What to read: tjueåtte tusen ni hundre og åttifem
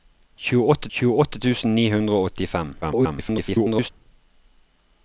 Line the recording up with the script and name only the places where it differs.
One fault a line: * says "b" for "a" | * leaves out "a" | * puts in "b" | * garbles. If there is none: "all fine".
* puts in "tjueåtte"
* garbles